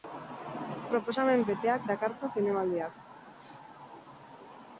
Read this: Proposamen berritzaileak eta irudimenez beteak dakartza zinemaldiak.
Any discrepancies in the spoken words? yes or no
yes